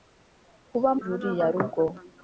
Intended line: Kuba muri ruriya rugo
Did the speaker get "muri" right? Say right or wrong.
wrong